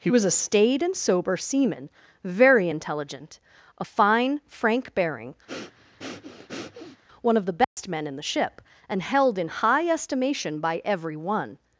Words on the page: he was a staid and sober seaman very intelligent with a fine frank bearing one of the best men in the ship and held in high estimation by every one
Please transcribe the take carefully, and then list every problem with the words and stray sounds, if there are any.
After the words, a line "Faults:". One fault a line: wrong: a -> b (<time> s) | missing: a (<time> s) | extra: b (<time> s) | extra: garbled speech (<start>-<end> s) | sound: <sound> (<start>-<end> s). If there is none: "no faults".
he was a staid and sober seaman very intelligent a fine frank bearing one of the best men in the ship and held in high estimation by every one
Faults:
missing: with (3.4 s)
sound: breath (5.5-7.0 s)
sound: dropout (7.6-7.8 s)